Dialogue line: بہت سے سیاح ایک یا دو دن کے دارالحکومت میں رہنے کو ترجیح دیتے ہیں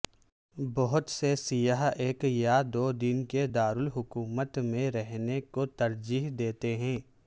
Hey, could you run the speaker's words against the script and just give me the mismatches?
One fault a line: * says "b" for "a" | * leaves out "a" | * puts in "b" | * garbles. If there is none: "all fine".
all fine